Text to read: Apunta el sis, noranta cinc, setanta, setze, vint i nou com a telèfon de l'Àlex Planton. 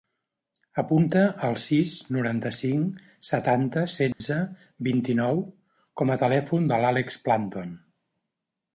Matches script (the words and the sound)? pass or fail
fail